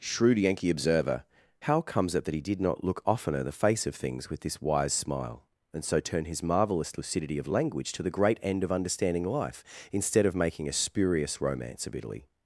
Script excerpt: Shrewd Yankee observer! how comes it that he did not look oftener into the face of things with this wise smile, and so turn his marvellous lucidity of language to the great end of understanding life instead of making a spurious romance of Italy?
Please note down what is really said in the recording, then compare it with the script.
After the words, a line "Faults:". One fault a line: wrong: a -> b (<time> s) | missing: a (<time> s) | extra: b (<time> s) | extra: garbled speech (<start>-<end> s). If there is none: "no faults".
Shrewd Yankee observer! how comes it that he did not look oftener the face of things with this wise smile, and so turn his marvellous lucidity of language to the great end of understanding life instead of making a spurious romance of Italy?
Faults:
missing: into (3.4 s)